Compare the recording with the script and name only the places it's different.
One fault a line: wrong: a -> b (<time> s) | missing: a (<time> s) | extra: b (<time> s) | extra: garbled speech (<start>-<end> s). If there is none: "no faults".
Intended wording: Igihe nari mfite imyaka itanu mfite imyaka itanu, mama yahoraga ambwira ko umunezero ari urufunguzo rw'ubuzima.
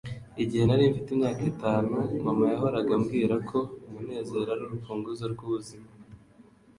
missing: mfite imyaka itanu (1.9 s)